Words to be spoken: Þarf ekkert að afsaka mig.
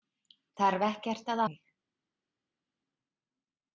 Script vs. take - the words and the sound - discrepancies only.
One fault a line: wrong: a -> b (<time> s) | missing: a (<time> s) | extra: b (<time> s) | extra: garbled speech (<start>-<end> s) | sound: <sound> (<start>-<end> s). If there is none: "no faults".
missing: afsaka (1.4 s)